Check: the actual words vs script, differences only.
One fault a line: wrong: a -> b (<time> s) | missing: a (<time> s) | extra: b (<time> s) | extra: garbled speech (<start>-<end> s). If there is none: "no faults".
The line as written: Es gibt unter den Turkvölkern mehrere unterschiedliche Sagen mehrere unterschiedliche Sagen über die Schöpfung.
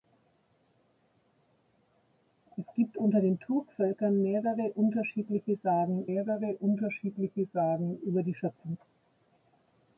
no faults